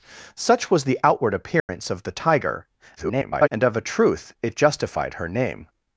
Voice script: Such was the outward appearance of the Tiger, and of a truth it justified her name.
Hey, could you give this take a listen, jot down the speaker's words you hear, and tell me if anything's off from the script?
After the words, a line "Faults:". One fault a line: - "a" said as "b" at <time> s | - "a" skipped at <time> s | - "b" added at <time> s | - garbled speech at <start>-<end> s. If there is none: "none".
Such was the outward appearance of the Tiger, [garbled] and of a truth it justified her name.
Faults:
- garbled speech at 3.0-3.5 s